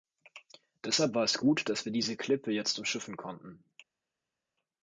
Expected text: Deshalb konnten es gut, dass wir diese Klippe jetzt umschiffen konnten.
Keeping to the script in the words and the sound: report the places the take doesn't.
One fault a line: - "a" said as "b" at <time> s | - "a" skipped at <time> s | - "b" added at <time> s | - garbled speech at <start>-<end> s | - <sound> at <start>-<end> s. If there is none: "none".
- "konnten" said as "war" at 1.1 s